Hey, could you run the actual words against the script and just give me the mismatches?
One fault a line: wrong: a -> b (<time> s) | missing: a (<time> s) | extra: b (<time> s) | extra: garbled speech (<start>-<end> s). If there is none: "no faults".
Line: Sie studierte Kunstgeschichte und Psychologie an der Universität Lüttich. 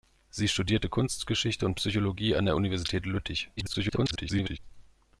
extra: garbled speech (3.6-4.6 s)